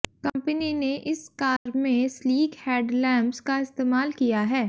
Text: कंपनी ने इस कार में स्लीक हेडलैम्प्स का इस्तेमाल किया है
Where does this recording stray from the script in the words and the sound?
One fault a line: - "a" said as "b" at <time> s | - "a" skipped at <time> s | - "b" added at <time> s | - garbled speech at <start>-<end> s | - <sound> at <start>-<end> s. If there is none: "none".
- dropout at 1.6-1.7 s